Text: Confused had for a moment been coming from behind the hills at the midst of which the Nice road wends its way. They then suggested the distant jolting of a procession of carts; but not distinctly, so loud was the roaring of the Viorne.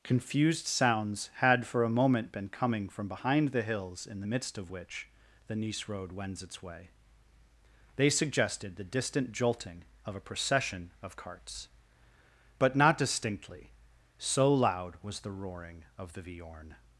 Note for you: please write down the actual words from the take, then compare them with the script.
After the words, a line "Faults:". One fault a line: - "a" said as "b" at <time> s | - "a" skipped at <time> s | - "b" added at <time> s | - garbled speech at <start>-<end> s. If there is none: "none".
Confused sounds had for a moment been coming from behind the hills in the midst of which the Nice road wends its way. They suggested the distant jolting of a procession of carts; but not distinctly, so loud was the roaring of the Viorne.
Faults:
- "sounds" added at 0.7 s
- "at" said as "in" at 4.1 s
- "then" skipped at 8.1 s